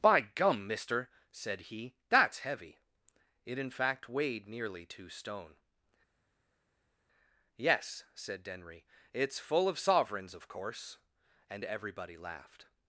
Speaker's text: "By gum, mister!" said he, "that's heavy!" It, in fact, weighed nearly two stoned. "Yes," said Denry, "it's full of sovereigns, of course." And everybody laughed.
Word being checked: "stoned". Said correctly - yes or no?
no